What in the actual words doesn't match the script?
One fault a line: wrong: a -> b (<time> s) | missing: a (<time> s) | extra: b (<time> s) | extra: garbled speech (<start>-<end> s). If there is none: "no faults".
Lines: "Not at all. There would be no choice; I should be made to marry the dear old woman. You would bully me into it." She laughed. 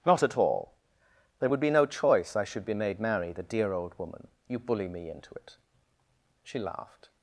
missing: to (3.0 s)
missing: would (4.6 s)